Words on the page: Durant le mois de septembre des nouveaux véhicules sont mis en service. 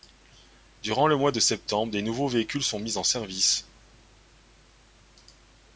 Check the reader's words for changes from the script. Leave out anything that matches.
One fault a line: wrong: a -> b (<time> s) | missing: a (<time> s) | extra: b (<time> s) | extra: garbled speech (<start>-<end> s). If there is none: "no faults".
no faults